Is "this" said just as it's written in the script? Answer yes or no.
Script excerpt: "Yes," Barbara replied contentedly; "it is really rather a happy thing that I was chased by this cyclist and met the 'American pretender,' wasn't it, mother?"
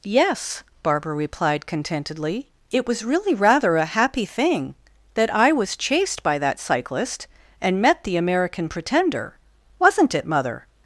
no